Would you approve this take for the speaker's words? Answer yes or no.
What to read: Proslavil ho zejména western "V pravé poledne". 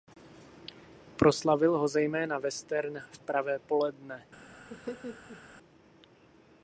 yes